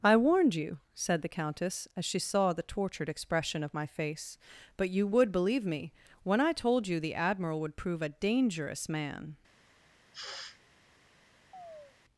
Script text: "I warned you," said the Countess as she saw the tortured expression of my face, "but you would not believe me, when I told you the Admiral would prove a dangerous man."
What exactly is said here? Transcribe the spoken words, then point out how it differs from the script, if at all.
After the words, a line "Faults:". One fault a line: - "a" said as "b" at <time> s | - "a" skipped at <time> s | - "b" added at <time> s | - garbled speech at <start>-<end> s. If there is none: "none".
"I warned you," said the Countess as she saw the tortured expression of my face, "but you would believe me, when I told you the Admiral would prove a dangerous man."
Faults:
- "not" skipped at 5.3 s